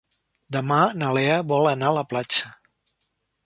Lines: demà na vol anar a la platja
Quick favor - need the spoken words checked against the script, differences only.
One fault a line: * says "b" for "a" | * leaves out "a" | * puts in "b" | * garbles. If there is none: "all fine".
* puts in "lea"